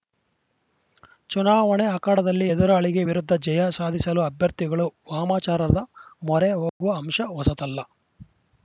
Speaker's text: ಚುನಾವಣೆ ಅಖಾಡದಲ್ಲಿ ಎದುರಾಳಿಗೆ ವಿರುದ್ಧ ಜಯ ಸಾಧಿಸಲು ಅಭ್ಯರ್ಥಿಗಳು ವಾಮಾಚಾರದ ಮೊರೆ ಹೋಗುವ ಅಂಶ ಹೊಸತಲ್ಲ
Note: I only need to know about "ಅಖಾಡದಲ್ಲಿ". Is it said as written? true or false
true